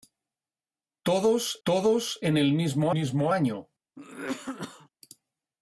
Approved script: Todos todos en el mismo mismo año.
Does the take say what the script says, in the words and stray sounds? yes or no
no